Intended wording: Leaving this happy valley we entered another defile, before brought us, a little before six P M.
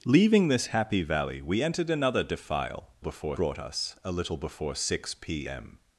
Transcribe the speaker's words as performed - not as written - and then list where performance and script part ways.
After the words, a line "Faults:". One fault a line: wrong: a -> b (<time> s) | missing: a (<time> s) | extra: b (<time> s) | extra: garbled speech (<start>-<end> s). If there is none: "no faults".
Leaving this happy valley we entered another defile, before brought us, a little before six P M.
Faults:
no faults